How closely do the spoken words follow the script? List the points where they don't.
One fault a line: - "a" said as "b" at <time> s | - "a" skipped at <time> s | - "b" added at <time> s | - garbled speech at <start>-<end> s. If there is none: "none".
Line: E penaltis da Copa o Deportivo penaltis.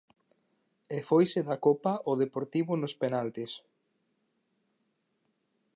- "penaltis" said as "foise" at 1.1 s
- "nos" added at 2.8 s